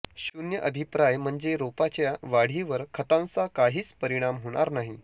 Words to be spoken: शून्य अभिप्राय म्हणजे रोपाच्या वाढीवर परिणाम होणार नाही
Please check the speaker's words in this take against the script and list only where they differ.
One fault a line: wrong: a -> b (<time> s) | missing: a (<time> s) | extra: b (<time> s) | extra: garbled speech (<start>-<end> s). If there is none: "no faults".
extra: खतांचा काहीच (2.9 s)